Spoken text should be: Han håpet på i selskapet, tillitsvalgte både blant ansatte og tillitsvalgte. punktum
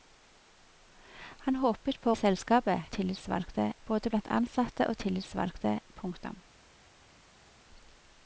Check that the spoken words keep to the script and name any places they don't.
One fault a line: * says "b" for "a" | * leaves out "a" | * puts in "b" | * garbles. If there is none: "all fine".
all fine